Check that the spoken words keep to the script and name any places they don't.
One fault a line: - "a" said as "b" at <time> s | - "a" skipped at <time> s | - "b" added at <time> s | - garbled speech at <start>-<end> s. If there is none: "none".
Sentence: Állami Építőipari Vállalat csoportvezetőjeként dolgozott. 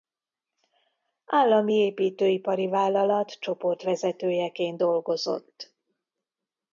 none